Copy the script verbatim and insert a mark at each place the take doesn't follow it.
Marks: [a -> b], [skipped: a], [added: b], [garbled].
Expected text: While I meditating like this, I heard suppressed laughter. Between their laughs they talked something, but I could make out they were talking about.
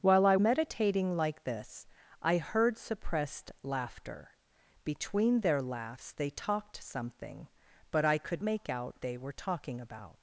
While I meditating like this, I heard suppressed laughter. Between their laughs they talked something, but I could make out they were talking about.